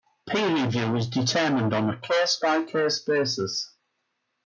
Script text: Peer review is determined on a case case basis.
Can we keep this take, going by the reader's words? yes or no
no